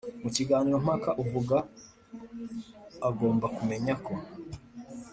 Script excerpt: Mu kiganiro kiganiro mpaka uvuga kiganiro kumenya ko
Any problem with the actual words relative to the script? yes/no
yes